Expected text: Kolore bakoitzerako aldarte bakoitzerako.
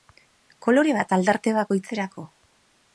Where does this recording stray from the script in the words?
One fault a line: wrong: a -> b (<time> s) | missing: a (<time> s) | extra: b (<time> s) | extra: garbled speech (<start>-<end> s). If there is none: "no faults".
wrong: bakoitzerako -> bat (1.0 s)